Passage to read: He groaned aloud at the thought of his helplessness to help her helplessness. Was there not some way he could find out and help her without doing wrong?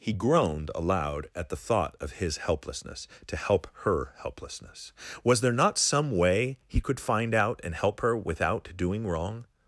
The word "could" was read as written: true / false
true